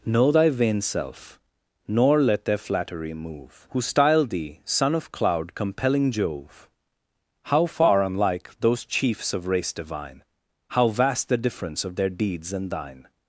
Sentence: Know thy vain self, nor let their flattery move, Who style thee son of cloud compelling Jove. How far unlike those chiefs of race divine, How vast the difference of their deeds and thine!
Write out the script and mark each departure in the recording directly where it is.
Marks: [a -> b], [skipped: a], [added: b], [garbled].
Know thy vain self, nor let their flattery move, Who style thee son of cloud compelling Jove. How far unlike those chiefs of race divine, How vast the difference of their deeds and thine!